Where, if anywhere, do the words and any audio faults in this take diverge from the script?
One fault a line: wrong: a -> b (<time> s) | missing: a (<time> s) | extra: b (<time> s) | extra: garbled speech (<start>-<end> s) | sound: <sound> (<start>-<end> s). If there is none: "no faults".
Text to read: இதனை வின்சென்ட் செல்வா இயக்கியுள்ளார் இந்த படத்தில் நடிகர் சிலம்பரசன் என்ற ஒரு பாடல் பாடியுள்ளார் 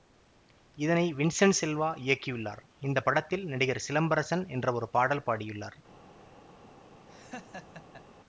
sound: laugh (7.1-8.0 s)